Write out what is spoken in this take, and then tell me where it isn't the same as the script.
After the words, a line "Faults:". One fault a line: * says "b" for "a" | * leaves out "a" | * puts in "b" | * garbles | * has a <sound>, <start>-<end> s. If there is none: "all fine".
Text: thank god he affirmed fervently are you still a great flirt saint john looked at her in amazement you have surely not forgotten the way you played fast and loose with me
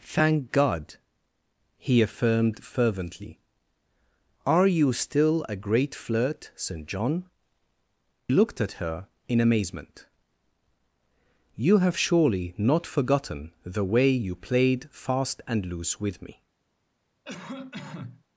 thank god he affirmed fervently are you still a great flirt saint john looked at her in amazement you have surely not forgotten the way you played fast and loose with me
Faults:
* has a cough, 17.2-18.2 s